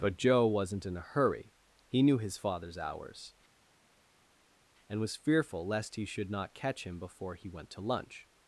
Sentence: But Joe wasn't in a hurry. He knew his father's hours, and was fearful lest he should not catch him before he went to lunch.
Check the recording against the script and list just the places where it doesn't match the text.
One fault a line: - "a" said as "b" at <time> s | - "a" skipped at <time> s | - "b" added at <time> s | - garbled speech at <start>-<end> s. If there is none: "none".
none